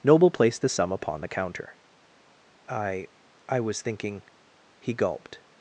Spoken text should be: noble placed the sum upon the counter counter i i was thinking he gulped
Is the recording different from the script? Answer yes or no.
yes